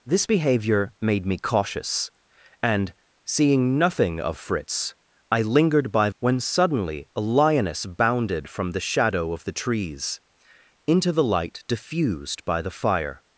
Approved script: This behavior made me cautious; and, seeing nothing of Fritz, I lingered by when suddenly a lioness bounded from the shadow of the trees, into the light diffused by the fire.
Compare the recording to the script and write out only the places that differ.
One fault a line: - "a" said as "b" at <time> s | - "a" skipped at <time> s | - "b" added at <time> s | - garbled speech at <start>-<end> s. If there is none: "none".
none